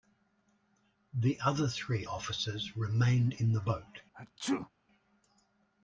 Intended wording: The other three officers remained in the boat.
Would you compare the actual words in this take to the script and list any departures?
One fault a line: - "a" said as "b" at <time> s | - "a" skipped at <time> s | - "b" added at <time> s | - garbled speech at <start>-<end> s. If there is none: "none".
none